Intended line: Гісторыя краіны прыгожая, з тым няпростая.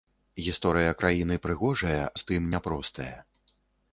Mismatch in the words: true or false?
false